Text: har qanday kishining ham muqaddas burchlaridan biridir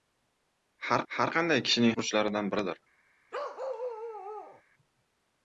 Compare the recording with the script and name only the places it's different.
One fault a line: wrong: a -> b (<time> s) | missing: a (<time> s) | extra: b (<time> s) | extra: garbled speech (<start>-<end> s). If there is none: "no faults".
extra: har (1.1 s)
missing: ham muqaddas (1.9 s)